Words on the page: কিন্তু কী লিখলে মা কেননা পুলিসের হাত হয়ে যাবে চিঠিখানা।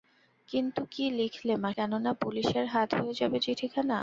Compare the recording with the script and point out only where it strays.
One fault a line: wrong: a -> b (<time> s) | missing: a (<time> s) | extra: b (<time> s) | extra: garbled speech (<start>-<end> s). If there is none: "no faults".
no faults